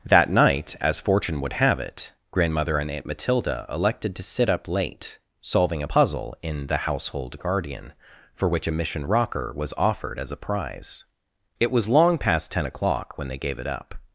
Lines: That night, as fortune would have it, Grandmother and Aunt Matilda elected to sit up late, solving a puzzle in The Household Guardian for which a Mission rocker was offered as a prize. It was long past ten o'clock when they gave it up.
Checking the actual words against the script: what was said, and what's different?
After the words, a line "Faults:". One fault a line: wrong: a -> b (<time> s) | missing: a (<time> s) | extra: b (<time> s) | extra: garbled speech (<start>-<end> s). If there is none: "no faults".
That night, as fortune would have it, Grandmother and Aunt Matilda elected to sit up late, solving a puzzle in The Household Guardian for which a Mission rocker was offered as a prize. It was long past ten o'clock when they gave it up.
Faults:
no faults